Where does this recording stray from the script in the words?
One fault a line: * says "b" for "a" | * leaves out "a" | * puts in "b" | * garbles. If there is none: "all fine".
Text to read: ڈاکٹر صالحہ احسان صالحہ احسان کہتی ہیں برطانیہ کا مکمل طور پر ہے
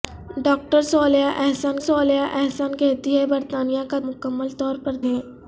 all fine